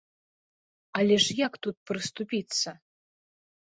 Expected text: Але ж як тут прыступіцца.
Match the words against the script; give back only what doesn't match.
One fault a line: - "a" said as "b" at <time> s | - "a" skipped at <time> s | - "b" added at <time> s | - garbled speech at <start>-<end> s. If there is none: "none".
none